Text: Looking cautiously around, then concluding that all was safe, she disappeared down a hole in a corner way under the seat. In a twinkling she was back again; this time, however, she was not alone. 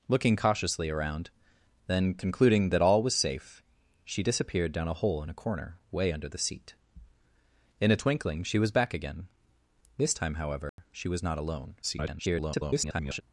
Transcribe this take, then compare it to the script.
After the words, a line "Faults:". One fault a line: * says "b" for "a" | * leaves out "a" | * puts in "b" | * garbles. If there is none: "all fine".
Looking cautiously around, then concluding that all was safe, she disappeared down a hole in a corner way under the seat. In a twinkling she was back again; this time, however, she was not alone. [garbled]
Faults:
* garbles